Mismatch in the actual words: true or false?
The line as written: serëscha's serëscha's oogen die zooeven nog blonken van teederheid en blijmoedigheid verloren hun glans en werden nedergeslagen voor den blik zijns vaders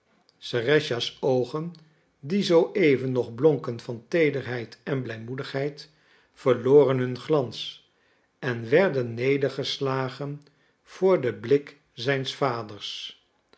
true